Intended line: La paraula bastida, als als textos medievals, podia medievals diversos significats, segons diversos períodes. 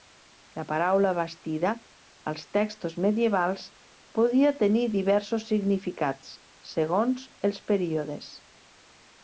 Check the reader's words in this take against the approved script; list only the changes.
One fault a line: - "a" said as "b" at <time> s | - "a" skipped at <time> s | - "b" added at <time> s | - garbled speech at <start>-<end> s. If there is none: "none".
- "als" skipped at 2.5 s
- "medievals" said as "tenir" at 4.6 s
- "diversos" said as "els" at 7.5 s